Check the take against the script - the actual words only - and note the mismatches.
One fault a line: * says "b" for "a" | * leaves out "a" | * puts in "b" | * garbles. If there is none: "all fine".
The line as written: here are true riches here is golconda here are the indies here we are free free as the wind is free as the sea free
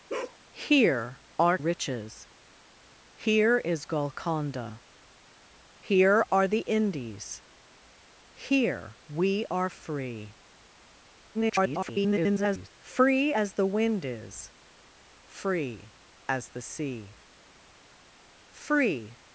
* leaves out "true"
* garbles